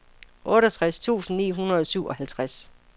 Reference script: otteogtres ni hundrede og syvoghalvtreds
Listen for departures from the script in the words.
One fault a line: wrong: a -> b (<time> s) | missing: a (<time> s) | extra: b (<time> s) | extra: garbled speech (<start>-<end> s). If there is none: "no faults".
extra: tusind (1.0 s)